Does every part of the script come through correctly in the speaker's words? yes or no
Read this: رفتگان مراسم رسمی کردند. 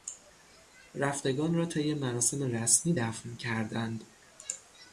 no